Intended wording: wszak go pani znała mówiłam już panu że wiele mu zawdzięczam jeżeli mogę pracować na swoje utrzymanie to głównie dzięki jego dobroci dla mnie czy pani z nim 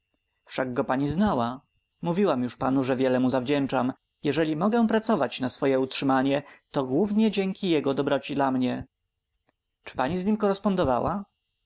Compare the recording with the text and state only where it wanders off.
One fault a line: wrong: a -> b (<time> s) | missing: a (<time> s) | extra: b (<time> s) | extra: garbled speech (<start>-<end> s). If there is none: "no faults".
no faults